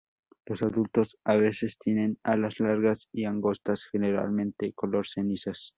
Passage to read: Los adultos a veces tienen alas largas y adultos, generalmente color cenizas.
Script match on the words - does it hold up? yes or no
no